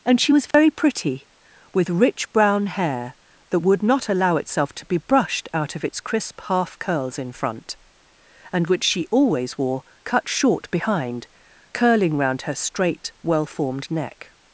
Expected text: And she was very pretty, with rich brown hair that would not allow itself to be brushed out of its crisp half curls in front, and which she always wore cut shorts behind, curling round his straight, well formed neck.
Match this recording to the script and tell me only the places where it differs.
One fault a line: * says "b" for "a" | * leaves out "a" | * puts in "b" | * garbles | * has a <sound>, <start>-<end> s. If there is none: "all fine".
* has a dropout, 0.5-0.5 s
* says "short" for "shorts"
* says "her" for "his"